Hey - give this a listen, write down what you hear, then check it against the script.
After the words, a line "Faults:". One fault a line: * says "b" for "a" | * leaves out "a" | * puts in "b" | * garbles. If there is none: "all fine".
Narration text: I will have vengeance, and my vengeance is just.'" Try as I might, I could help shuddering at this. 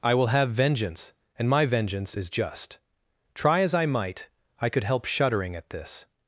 I will have vengeance, and my vengeance is just.'" Try as I might, I could help shuddering at this.
Faults:
all fine